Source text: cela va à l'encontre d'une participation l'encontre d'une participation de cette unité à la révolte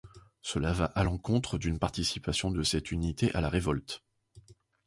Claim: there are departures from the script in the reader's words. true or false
true